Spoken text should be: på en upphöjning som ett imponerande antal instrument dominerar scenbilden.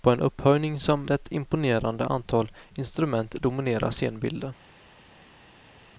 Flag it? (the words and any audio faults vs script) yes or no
no